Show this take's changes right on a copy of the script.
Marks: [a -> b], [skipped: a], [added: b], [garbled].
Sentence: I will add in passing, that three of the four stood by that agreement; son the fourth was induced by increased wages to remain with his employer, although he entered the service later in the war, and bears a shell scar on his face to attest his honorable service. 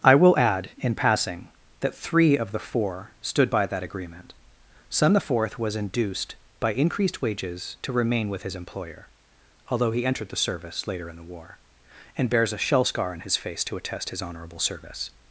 I will add in passing, that three of the four stood by that agreement; son the fourth was induced by increased wages to remain with his employer, although he entered the service later in the war, and bears a shell scar on his face to attest his honorable service.